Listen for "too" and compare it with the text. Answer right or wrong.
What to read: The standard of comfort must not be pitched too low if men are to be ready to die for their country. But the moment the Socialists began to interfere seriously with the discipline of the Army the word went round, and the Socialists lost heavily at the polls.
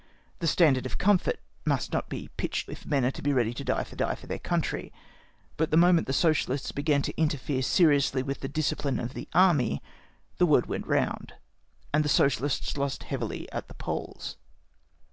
wrong